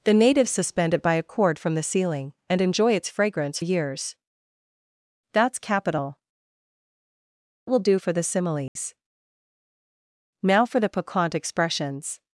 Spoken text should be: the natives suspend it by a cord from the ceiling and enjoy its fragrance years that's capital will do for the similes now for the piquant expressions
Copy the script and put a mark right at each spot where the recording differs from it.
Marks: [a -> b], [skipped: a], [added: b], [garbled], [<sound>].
the natives suspend it by a cord from the ceiling and enjoy its fragrance years that's capital will do for the similes [dropout] now for the piquant expressions